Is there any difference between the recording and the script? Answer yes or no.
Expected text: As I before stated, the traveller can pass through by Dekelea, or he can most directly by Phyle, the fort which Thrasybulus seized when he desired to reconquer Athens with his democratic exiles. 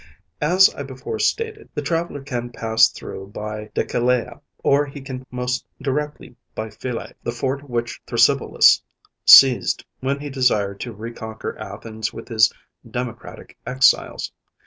no